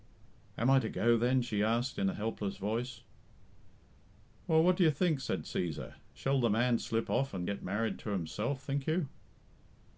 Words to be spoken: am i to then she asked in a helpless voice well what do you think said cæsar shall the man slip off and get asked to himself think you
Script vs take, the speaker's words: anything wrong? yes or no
yes